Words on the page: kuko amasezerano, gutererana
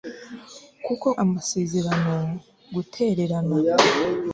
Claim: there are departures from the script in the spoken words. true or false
false